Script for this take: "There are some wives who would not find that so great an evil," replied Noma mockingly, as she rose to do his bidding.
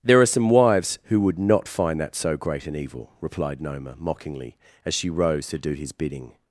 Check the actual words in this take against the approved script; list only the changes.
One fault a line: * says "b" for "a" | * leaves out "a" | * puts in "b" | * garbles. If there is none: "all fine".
all fine